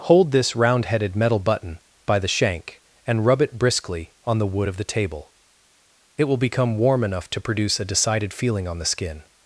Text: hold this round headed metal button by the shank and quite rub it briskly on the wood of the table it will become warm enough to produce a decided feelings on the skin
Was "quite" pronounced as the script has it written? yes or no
no